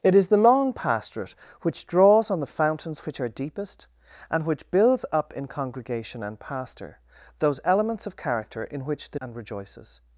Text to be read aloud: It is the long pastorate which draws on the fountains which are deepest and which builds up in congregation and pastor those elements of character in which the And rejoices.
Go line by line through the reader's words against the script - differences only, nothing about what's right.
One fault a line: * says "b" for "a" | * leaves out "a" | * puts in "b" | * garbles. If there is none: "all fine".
all fine